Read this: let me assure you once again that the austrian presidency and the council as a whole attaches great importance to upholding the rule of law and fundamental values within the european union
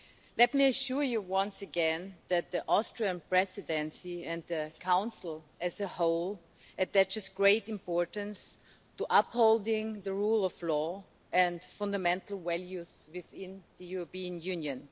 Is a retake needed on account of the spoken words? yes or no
no